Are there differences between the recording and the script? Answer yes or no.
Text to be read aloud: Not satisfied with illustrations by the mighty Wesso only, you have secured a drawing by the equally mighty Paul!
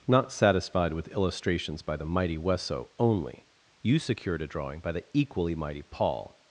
yes